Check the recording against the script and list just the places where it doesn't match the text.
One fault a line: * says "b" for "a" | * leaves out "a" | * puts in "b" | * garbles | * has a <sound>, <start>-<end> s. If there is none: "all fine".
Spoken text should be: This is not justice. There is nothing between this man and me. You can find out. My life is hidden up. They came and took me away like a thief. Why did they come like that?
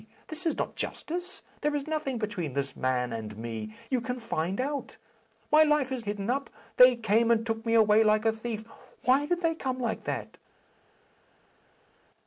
all fine